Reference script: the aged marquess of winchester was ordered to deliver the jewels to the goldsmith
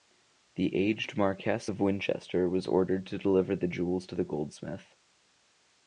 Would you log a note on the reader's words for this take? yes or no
no